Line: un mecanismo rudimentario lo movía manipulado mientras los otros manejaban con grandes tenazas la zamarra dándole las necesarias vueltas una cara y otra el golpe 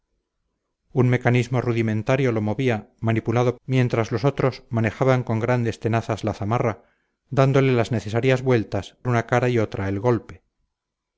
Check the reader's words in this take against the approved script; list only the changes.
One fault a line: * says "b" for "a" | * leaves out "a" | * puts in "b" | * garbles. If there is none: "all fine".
all fine